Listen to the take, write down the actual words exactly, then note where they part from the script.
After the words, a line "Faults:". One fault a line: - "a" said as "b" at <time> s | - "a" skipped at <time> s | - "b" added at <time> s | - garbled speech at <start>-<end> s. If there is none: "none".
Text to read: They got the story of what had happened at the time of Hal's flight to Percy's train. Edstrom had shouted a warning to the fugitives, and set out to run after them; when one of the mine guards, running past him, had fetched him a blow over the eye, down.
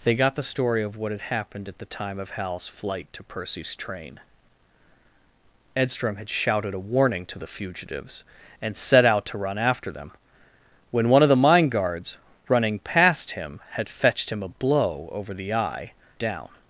They got the story of what had happened at the time of Hal's flight to Percy's train. Edstrom had shouted a warning to the fugitives, and set out to run after them; when one of the mine guards, running past him, had fetched him a blow over the eye, down.
Faults:
none